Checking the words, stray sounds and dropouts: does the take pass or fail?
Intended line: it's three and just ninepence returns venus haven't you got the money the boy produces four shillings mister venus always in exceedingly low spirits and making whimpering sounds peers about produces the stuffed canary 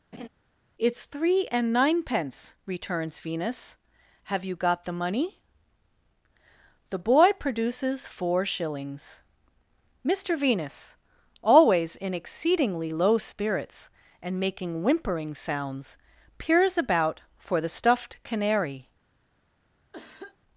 fail